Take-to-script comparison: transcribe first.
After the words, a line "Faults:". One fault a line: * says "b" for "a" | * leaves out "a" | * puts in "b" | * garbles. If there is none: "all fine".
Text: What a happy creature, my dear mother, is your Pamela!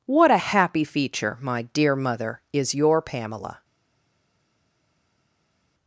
What a happy feature, my dear mother, is your Pamela!
Faults:
* says "feature" for "creature"